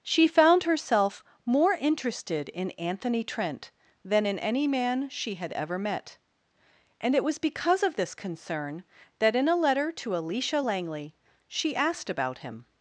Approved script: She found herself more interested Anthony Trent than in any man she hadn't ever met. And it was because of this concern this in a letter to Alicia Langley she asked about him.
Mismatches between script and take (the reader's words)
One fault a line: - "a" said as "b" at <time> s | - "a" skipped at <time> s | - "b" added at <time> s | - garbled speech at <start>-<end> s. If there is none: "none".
- "in" added at 2.5 s
- "hadn't" said as "had" at 5.4 s
- "this" said as "that" at 9.2 s